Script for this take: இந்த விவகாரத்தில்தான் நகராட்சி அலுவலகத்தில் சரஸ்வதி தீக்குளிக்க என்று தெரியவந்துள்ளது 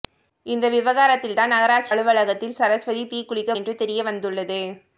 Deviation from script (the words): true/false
false